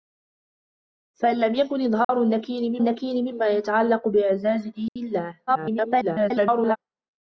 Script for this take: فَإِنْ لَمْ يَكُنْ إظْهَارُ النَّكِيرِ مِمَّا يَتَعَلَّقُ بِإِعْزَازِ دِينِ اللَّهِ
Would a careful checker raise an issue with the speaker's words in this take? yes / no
yes